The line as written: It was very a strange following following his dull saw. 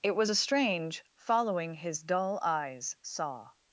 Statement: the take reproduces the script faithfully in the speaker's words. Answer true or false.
false